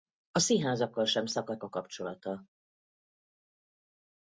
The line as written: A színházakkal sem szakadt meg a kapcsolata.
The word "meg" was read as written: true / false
false